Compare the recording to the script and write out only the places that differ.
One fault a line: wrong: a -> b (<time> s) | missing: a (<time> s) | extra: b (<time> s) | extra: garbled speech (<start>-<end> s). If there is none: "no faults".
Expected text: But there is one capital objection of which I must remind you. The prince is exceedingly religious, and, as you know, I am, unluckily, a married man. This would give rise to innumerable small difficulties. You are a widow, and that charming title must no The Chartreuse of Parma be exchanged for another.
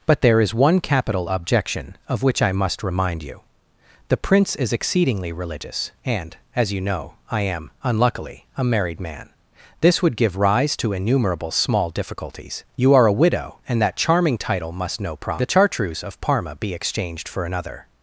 extra: problem (15.2 s)